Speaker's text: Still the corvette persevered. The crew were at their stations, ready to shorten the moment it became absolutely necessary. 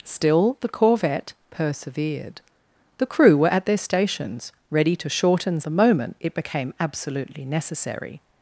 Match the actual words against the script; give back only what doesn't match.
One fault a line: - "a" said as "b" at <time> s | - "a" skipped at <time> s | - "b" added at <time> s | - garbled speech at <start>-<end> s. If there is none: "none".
none